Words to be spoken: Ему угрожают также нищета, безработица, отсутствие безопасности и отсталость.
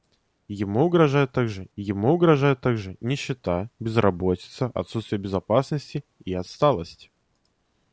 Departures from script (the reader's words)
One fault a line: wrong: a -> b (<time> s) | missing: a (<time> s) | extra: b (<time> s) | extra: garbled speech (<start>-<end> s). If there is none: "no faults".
extra: ему угрожают также (1.8 s)